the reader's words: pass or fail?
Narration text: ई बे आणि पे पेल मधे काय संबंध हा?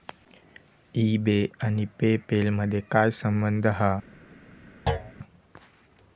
pass